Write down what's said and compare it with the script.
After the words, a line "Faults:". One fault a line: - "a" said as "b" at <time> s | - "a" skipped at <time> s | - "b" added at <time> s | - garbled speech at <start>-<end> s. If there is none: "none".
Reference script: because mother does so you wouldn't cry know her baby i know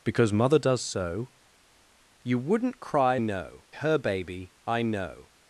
because mother does so you wouldn't cry know her baby i know
Faults:
none